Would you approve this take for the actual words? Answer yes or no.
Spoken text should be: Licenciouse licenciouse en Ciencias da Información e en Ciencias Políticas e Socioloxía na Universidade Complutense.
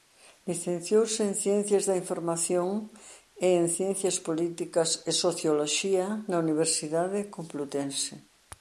no